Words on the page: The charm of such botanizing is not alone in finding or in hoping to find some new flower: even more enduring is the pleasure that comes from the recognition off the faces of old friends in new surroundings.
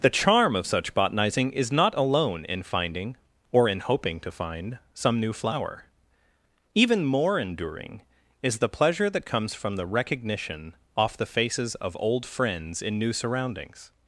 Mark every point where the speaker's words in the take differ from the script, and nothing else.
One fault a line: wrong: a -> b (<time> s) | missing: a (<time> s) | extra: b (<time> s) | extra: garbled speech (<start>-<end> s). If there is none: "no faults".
no faults